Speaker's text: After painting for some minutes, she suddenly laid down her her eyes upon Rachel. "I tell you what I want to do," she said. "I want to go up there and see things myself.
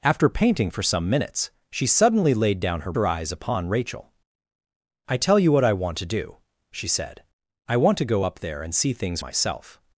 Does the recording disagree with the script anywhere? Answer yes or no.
no